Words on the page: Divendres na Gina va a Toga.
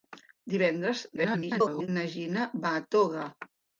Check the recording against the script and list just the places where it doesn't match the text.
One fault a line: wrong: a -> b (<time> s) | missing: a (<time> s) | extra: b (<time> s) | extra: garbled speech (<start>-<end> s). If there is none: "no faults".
extra: garbled speech (1.2-1.9 s)